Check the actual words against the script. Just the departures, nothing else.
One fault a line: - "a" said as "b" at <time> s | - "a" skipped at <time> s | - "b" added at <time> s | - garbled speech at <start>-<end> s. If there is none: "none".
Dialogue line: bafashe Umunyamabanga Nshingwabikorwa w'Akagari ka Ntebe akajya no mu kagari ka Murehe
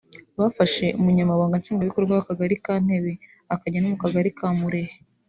none